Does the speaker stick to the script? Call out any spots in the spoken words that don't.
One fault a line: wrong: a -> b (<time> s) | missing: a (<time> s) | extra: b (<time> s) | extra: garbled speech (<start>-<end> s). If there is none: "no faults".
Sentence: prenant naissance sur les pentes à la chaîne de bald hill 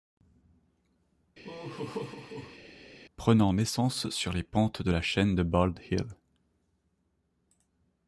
wrong: à -> de (4.8 s)